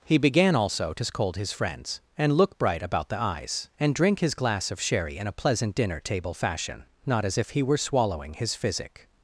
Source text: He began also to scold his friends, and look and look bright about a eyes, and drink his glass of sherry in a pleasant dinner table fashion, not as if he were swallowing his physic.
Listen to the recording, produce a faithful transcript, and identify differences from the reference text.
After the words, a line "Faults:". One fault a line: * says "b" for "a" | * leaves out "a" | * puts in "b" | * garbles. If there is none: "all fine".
He began also to scold his friends, and look bright about the eyes, and drink his glass of sherry in a pleasant dinner table fashion, not as if he were swallowing his physic.
Faults:
* leaves out "and look"
* says "the" for "a"